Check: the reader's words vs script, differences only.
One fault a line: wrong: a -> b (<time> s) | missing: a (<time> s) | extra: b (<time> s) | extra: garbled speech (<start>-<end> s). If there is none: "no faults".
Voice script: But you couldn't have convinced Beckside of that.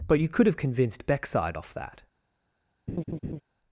wrong: couldn't -> could (0.3 s)
wrong: of -> off (1.5 s)